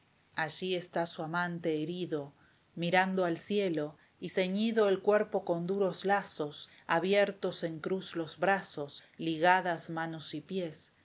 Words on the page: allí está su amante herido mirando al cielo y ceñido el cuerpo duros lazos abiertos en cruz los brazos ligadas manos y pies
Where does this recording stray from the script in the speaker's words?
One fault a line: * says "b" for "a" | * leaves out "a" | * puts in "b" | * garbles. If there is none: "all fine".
* puts in "con"